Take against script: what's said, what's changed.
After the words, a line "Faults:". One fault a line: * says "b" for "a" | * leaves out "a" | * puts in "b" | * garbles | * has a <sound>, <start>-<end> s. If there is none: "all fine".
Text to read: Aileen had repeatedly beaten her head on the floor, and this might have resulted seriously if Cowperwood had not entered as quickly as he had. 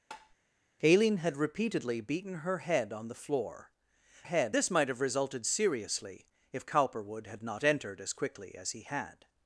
Aileen had repeatedly beaten her head on the floor, head this might have resulted seriously if Cowperwood had not entered as quickly as he had.
Faults:
* has a tap, 0.1-0.4 s
* says "head" for "and"